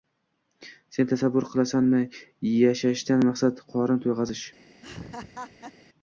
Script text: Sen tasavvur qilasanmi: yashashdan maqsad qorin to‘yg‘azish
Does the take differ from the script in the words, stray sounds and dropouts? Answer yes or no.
yes